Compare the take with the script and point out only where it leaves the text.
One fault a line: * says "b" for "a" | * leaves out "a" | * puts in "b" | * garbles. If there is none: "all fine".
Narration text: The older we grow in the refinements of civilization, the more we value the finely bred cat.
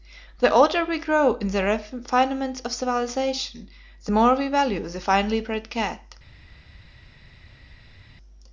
all fine